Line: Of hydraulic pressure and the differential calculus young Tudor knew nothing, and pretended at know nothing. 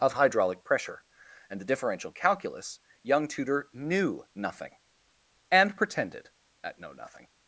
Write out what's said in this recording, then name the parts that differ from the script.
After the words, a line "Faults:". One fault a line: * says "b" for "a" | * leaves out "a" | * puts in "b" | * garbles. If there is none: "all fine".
Of hydraulic pressure and the differential calculus young Tudor knew nothing, and pretended at know nothing.
Faults:
all fine